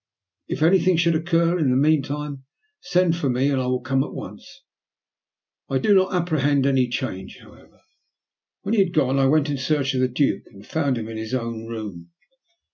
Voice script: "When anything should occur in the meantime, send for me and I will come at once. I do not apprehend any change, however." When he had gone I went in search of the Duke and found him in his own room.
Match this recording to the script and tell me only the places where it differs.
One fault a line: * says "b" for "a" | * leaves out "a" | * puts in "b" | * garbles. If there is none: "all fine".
* says "If" for "When"